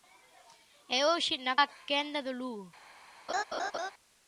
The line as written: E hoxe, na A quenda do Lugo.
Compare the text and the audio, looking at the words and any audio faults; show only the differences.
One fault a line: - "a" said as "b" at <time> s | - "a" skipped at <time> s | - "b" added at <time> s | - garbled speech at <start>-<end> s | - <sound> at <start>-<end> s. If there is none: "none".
- laugh at 3.3-3.9 s